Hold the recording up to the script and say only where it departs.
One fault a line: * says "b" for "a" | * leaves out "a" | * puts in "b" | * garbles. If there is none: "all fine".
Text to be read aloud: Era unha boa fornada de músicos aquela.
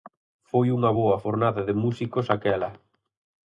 * says "Foi" for "Era"